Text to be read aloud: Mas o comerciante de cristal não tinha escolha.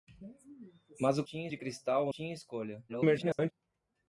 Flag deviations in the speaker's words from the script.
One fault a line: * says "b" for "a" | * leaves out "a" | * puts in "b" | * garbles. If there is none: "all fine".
* says "tinha" for "comerciante"
* leaves out "não"
* garbles